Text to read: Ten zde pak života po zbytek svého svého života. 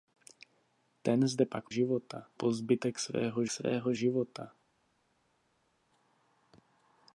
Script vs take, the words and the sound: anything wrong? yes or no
no